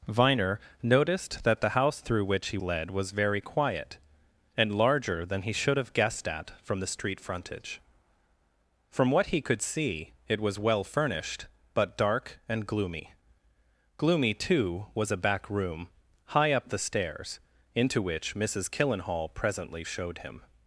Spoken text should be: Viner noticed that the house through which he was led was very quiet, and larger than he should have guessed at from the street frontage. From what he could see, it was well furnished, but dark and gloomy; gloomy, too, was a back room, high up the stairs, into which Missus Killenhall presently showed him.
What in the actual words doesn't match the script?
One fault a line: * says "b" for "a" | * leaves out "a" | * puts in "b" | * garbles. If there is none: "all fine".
* leaves out "was"